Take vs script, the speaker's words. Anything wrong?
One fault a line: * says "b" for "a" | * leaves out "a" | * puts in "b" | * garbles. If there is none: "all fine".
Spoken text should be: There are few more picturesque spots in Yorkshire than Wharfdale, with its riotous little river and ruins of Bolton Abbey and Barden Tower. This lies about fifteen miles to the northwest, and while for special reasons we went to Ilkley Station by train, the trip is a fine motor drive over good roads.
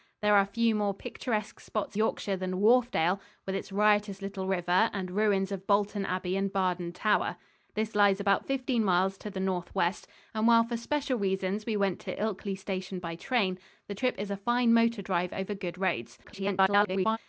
* leaves out "in"
* garbles